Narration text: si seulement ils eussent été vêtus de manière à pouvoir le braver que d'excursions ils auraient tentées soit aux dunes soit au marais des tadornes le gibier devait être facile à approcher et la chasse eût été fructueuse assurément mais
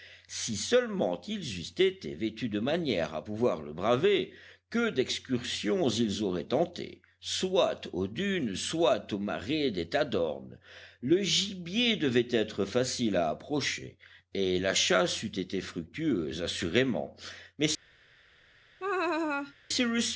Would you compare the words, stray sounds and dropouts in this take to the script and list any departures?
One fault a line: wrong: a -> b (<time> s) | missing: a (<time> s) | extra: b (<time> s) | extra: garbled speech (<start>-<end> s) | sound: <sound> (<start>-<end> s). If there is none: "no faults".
sound: laugh (18.8-19.5 s)